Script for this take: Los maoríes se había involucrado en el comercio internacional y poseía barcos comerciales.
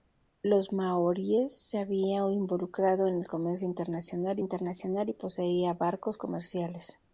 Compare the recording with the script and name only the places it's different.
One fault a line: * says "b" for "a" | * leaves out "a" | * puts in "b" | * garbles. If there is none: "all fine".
* puts in "internacional"